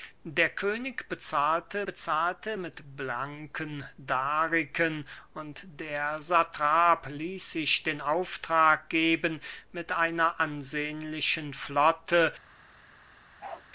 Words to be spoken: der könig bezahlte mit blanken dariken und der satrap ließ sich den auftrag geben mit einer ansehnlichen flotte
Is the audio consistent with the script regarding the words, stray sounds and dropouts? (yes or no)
no